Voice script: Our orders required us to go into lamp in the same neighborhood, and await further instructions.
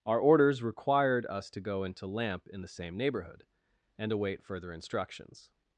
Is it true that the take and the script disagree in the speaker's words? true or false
false